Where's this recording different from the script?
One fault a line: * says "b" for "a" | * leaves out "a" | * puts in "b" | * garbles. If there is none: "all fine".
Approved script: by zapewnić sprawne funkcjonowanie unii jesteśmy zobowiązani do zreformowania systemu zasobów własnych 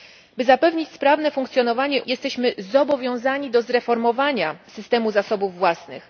* leaves out "unii"